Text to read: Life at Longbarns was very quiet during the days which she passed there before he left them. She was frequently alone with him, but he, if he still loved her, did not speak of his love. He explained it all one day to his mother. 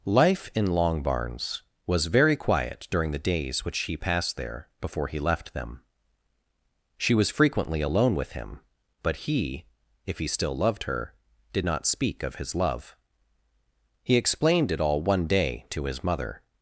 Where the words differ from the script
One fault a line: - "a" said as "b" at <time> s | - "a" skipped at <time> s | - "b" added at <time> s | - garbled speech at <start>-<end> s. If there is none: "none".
- "at" said as "in" at 0.6 s